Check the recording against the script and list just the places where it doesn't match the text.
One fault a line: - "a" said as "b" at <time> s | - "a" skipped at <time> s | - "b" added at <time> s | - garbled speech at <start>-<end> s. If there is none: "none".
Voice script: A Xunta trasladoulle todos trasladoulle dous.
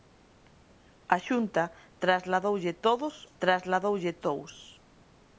none